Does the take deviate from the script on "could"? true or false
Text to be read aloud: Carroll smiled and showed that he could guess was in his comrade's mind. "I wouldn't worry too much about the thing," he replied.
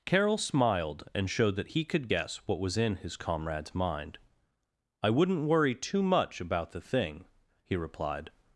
false